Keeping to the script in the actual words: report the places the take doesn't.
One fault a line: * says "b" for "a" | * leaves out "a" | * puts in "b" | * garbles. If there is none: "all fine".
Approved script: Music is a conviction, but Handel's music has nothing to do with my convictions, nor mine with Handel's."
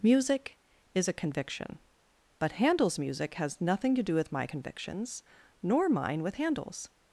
all fine